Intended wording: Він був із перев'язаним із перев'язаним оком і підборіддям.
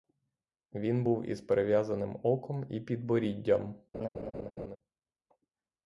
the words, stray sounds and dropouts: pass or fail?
fail